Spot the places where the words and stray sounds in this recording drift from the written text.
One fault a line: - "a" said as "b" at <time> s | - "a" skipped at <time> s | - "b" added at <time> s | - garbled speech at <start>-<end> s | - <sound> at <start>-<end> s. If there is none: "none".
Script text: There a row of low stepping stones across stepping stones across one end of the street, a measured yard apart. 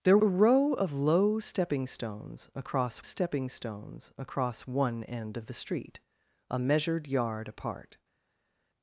none